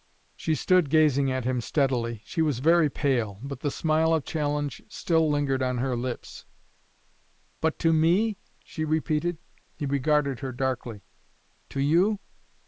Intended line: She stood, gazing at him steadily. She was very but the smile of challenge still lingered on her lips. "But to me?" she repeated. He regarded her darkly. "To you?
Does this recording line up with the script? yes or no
no